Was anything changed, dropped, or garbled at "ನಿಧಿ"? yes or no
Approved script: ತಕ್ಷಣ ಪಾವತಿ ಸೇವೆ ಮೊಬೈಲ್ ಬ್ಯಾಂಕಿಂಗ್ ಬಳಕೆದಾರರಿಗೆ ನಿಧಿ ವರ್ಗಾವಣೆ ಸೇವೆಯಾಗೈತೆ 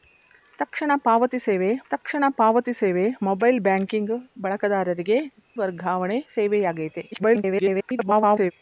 yes